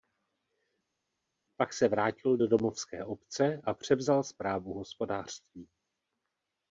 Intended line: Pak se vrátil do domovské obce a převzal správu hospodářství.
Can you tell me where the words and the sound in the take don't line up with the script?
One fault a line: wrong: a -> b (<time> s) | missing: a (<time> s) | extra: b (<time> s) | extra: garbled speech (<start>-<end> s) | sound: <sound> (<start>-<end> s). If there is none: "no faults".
no faults